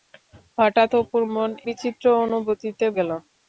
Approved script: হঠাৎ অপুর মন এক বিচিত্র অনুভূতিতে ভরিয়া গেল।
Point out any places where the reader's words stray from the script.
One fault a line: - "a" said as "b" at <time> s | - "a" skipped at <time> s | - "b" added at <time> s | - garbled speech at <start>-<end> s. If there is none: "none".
- "এক" skipped at 1.5 s
- "ভরিয়া" skipped at 2.9 s